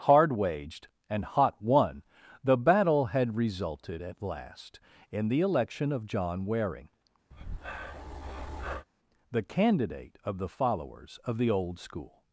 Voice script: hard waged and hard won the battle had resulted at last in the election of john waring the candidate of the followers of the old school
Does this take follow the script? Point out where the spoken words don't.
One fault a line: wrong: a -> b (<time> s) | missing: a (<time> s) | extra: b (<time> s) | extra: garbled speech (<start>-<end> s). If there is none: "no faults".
wrong: hard -> hot (1.2 s)